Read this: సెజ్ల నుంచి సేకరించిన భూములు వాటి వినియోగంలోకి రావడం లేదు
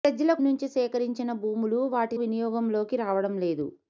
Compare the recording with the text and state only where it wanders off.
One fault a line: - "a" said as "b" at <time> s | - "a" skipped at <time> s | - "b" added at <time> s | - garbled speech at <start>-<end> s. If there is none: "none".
none